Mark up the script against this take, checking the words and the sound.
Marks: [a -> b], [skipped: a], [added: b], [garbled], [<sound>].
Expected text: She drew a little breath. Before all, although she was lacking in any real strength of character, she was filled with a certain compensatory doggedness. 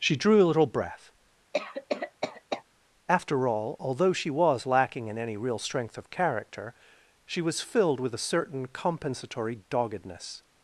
She drew a little breath. [cough] [Before -> After] all, although she was lacking in any real strength of character, she was filled with a certain compensatory doggedness.